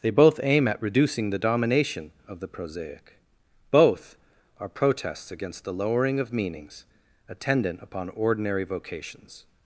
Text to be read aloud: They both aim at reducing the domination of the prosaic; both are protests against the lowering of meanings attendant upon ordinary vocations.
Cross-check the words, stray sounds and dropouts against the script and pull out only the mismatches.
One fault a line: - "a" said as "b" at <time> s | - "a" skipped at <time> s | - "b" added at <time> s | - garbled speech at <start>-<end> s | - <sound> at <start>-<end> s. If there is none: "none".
none